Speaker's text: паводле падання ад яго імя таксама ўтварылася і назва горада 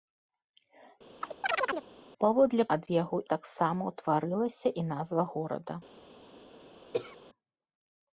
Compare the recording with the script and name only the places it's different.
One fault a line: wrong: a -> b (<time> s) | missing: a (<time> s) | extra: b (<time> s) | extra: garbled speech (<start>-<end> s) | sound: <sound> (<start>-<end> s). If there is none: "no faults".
sound: chirp (1.2-1.9 s)
missing: падання (2.6 s)
missing: імя (3.2 s)
sound: throat clearing (6.9-7.2 s)